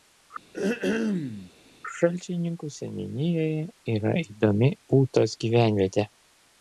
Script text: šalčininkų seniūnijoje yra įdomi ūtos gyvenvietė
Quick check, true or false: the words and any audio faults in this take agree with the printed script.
false